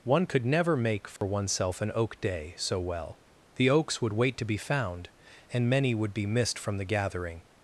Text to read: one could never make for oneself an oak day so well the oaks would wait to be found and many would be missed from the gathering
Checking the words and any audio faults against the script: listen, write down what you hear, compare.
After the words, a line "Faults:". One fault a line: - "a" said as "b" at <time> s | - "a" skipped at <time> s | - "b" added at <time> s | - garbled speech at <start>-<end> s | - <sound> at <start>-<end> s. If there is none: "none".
one could never make for oneself an oak day so well the oaks would wait to be found and many would be missed from the gathering
Faults:
- dropout at 1.2-1.2 s